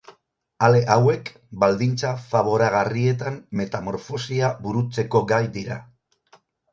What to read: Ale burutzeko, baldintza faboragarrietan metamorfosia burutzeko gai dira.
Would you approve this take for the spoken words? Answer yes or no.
no